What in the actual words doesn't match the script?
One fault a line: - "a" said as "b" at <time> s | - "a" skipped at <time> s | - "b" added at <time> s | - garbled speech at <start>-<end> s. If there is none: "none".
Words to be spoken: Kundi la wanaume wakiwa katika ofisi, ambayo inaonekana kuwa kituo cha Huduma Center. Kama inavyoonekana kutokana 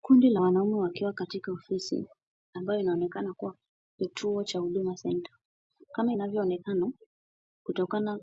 none